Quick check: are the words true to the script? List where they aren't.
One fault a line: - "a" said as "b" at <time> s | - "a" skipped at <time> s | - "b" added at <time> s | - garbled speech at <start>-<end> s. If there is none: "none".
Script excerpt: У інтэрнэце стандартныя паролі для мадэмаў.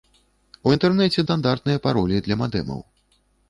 none